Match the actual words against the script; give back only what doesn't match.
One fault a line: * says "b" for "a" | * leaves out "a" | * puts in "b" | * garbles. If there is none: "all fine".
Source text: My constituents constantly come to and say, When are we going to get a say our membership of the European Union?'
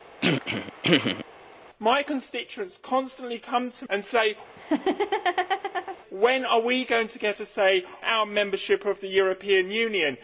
all fine